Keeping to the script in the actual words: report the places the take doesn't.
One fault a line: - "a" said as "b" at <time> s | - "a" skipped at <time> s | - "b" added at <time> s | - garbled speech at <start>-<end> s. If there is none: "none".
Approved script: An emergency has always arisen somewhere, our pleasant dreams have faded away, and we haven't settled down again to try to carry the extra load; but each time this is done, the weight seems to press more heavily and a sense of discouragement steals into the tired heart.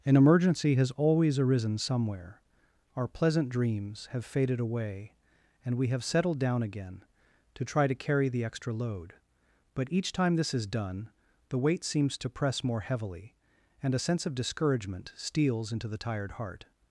- "haven't" said as "have" at 5.9 s